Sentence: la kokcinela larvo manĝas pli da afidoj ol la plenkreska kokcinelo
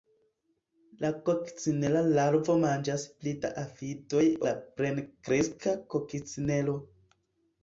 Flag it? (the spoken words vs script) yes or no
yes